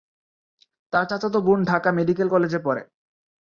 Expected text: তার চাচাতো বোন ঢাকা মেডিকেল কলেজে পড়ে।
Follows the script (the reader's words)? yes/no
yes